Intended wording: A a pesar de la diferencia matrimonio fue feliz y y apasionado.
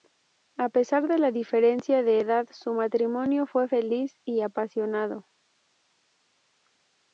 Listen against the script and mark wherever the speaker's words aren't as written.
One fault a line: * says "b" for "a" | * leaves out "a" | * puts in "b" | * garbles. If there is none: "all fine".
* leaves out "a"
* puts in "de edad su"
* leaves out "y"